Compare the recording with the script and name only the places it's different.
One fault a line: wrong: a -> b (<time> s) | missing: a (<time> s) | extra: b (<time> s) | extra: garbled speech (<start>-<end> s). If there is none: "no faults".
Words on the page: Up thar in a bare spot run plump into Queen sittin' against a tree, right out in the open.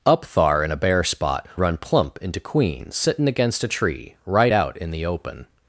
no faults